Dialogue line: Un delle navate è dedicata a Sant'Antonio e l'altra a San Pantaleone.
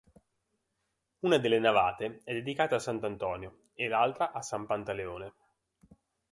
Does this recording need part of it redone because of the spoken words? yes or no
yes